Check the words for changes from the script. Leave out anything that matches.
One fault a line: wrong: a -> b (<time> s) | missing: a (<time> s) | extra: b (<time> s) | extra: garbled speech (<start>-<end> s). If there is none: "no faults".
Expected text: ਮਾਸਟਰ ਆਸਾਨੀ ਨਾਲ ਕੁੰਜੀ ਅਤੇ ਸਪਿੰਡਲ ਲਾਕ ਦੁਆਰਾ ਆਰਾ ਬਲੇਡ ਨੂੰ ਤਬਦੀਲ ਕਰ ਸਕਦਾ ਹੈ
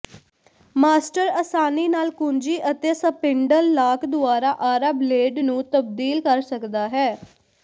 no faults